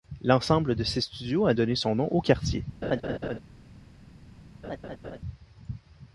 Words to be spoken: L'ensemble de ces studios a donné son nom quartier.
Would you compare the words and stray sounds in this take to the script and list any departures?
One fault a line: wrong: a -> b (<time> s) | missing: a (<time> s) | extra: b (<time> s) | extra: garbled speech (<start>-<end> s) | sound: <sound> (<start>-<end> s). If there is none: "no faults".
extra: au (2.1 s)
sound: laugh (2.8-3.4 s)
sound: laugh (4.6-5.2 s)